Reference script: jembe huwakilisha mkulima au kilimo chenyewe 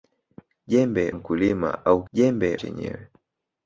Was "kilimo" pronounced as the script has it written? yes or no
no